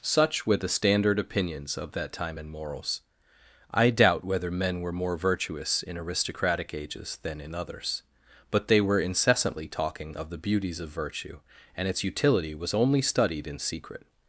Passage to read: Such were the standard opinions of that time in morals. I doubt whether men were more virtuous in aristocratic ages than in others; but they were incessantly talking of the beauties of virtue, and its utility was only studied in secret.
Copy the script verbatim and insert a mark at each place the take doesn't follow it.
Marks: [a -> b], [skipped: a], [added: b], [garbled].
Such were the standard opinions of that time in morals. I doubt whether men were more virtuous in aristocratic ages than in others; but they were incessantly talking of the beauties of virtue, and its utility was only studied in secret.